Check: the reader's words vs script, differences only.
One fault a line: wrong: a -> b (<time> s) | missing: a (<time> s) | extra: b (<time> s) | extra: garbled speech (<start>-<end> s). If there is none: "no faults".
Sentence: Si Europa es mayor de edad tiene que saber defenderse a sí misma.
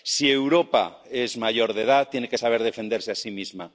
no faults